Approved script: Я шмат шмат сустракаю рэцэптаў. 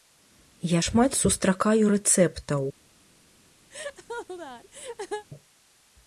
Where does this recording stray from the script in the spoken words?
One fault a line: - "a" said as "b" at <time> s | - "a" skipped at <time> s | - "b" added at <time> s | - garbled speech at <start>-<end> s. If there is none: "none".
- "шмат" skipped at 1.2 s